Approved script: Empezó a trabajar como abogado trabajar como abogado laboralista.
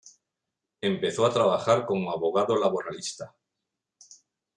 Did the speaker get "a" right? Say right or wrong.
right